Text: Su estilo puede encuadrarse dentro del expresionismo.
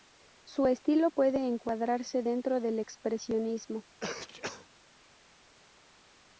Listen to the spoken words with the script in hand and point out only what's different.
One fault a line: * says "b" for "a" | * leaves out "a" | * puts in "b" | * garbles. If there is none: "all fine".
all fine